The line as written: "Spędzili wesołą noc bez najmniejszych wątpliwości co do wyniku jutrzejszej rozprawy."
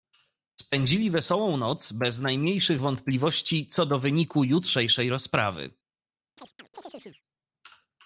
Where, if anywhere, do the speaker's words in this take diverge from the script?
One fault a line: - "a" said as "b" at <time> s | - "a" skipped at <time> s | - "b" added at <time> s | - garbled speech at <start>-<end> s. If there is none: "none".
none